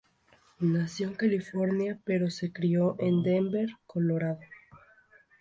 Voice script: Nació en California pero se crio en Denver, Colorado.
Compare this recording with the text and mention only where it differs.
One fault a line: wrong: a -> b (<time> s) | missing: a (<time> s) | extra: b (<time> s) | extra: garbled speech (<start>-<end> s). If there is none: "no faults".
no faults